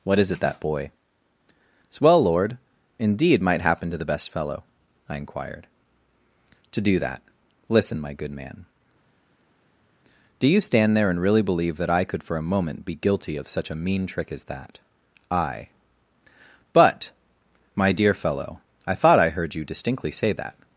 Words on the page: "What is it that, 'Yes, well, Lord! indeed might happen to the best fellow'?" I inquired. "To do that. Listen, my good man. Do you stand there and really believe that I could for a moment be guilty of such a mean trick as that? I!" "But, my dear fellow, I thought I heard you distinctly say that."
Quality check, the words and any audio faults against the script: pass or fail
fail